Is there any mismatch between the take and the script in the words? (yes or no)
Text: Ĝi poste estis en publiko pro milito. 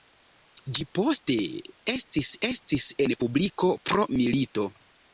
yes